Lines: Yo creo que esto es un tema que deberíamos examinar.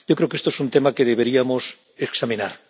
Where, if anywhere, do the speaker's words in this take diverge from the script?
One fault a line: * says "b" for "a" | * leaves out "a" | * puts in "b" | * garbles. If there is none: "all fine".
all fine